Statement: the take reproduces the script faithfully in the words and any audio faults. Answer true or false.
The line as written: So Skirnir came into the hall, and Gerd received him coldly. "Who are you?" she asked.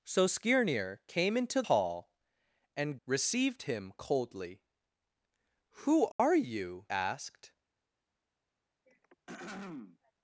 false